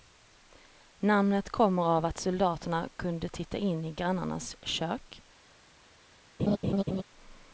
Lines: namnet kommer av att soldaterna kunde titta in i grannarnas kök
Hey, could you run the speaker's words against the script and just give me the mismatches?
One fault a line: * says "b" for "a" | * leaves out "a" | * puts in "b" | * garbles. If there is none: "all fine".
all fine